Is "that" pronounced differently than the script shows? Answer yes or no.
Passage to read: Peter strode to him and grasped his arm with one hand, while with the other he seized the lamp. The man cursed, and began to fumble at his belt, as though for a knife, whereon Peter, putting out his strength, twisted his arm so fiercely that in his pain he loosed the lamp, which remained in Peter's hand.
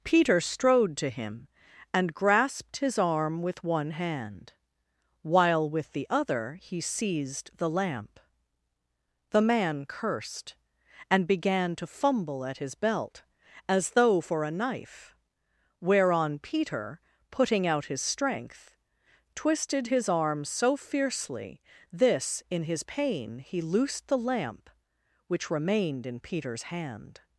yes